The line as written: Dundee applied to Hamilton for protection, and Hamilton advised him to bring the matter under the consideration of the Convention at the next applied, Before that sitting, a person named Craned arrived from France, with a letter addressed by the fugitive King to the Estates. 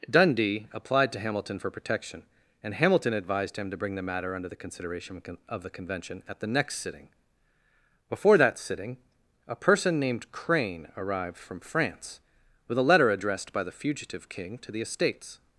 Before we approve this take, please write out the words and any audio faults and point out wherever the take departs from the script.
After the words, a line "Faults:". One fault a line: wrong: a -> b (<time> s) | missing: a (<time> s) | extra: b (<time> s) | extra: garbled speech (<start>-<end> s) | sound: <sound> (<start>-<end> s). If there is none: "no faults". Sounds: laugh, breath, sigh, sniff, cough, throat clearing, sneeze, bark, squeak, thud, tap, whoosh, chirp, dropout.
Dundee applied to Hamilton for protection, and Hamilton advised him to bring the matter under the consideration of the Convention at the next sitting, Before that sitting, a person named Crane arrived from France, with a letter addressed by the fugitive King to the Estates.
Faults:
wrong: applied -> sitting (6.8 s)
wrong: Craned -> Crane (10.3 s)